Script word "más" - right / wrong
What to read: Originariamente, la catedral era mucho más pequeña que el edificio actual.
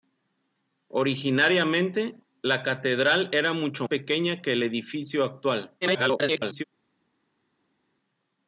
wrong